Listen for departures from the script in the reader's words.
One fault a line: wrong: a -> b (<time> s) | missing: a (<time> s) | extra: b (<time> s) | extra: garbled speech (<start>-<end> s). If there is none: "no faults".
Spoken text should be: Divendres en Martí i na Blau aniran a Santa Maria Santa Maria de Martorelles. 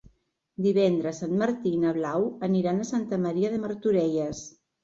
missing: Santa Maria (3.5 s)